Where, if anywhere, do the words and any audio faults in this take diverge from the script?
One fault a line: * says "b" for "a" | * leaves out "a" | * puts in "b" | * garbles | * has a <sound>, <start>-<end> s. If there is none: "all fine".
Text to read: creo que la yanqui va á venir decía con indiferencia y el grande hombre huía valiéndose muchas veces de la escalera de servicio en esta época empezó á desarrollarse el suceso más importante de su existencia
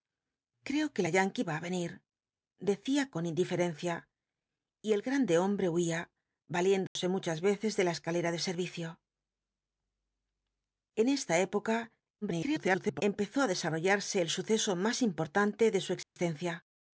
* has a dropout, 6.9-7.0 s
* garbles
* has a dropout, 16.0-16.2 s